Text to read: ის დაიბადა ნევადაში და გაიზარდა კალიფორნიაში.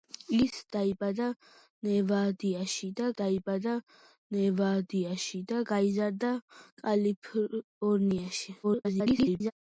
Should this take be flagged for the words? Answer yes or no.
yes